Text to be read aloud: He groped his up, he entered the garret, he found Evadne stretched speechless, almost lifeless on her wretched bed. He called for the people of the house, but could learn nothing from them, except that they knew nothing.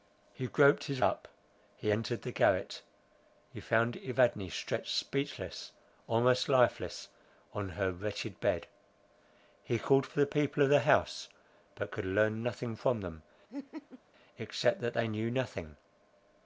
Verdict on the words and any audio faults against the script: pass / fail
fail